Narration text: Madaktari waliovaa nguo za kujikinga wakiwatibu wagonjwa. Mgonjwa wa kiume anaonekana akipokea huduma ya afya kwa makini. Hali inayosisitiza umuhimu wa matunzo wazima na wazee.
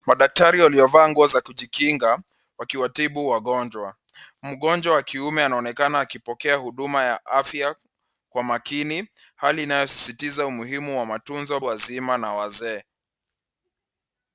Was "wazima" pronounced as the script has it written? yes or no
yes